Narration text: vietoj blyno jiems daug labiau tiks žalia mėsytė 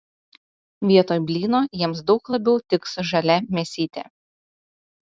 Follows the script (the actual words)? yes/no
yes